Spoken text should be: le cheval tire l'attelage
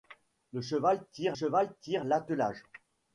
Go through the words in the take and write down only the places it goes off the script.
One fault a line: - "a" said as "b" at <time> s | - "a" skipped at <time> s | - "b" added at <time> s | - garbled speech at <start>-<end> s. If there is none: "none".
- "cheval tire" added at 1.3 s